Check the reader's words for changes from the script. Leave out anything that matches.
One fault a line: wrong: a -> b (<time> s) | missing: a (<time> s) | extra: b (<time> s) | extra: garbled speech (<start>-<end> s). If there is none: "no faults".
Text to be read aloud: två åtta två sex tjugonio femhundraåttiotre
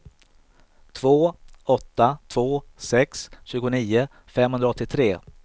no faults